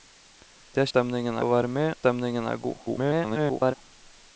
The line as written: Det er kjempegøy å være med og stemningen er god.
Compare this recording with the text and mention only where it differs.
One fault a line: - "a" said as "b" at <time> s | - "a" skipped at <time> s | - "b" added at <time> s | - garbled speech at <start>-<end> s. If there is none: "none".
- "kjempegøy" said as "stemningen" at 0.9 s
- "og" skipped at 1.9 s
- garbled speech at 2.8-3.7 s